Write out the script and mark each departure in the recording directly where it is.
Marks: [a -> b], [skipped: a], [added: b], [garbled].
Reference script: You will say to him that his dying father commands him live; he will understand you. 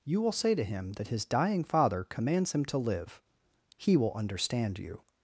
You will say to him that his dying father commands him [added: to] live; he will understand you.